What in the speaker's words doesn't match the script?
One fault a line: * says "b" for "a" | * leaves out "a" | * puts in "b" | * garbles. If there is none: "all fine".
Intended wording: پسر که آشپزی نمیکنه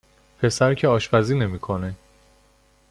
all fine